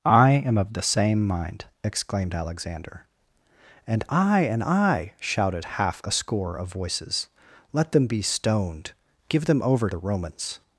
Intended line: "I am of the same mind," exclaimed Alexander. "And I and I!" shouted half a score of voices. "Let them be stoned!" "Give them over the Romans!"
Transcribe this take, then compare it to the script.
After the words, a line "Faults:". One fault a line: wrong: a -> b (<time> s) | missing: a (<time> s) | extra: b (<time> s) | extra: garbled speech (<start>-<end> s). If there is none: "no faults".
"I am of the same mind," exclaimed Alexander. "And I and I!" shouted half a score of voices. "Let them be stoned!" "Give them over the Romans!"
Faults:
no faults